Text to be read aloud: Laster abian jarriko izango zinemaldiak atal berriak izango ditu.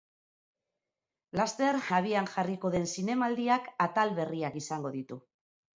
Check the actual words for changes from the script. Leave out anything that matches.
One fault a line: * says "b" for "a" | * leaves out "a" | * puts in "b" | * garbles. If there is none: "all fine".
* says "den" for "izango"